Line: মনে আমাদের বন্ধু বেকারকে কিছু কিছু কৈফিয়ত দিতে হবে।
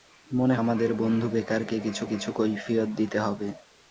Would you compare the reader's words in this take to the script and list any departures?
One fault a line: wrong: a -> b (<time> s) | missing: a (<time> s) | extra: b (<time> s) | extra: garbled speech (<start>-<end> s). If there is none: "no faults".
no faults